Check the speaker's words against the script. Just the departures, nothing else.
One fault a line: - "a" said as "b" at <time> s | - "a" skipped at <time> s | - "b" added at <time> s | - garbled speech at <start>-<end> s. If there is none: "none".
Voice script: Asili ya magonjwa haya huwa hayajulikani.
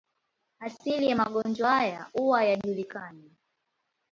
none